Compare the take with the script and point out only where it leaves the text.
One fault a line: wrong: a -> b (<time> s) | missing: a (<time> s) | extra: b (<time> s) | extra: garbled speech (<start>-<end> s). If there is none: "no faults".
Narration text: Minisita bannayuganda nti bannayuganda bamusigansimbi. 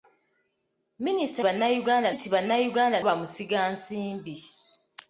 no faults